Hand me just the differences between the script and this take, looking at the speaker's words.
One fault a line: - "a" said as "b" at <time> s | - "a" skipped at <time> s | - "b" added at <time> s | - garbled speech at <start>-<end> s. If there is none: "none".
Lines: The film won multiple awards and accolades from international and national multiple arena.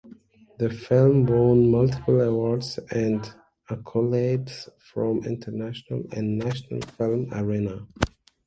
- "multiple" said as "film" at 7.0 s